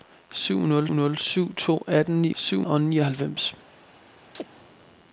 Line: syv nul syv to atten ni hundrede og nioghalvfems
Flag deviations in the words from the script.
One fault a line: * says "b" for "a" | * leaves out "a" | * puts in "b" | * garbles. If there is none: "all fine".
* puts in "nul"
* says "syv" for "hundrede"